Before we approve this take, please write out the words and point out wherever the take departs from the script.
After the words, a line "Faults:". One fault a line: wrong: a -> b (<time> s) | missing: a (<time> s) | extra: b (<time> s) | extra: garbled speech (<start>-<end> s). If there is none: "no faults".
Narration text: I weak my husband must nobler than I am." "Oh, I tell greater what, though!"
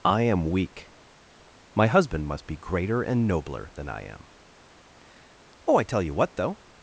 I am weak my husband must be greater and nobler than I am." "Oh, I tell you what, though!"
Faults:
extra: am (0.2 s)
extra: be greater and (2.4 s)
wrong: greater -> you (6.0 s)